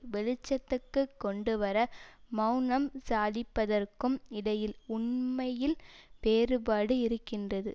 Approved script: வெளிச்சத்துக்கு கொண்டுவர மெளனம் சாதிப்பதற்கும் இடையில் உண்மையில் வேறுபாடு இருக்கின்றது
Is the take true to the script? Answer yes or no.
yes